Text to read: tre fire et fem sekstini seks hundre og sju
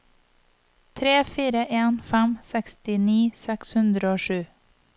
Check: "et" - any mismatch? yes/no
yes